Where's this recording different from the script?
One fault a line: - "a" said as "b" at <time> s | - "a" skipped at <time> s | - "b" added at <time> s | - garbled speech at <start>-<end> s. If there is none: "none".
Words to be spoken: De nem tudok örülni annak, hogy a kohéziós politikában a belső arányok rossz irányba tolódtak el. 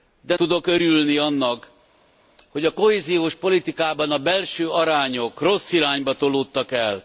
- "nem" skipped at 0.3 s